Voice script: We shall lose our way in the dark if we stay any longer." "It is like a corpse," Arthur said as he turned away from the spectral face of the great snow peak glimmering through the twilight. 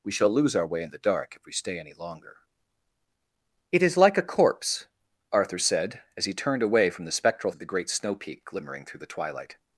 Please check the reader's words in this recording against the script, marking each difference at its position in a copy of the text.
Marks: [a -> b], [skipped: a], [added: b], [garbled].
We shall lose our way in the dark if we stay any longer." "It is like a corpse," Arthur said as he turned away from the spectral [skipped: face] of the great snow peak glimmering through the twilight.